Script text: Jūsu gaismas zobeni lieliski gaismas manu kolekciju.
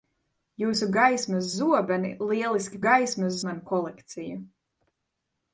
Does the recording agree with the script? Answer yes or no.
yes